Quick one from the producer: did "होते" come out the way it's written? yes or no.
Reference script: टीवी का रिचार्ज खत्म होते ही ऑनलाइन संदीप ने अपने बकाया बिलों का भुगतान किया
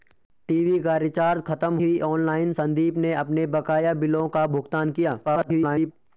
no